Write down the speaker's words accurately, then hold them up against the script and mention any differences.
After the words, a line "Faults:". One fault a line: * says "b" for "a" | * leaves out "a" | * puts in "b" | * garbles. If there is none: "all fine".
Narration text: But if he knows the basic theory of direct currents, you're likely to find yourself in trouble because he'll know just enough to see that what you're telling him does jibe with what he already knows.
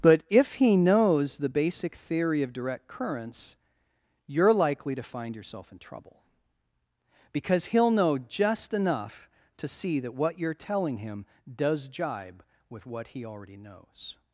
But if he knows the basic theory of direct currents, you're likely to find yourself in trouble because he'll know just enough to see that what you're telling him does jibe with what he already knows.
Faults:
all fine